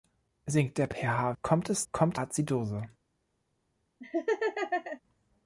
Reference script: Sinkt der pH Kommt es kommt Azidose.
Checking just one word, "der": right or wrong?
right